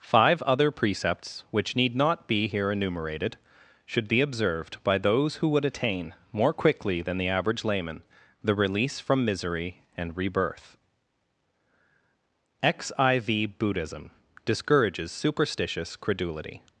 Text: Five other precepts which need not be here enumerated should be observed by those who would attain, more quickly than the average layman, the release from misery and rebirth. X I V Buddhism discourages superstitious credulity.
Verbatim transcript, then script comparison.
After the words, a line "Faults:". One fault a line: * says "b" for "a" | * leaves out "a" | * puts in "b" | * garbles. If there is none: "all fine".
Five other precepts which need not be here enumerated should be observed by those who would attain, more quickly than the average layman, the release from misery and rebirth. X I V Buddhism discourages superstitious credulity.
Faults:
all fine